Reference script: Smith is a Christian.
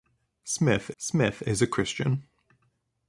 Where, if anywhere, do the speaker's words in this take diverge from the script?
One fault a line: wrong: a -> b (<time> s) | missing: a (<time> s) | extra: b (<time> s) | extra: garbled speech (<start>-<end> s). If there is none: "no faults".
extra: smith (1.0 s)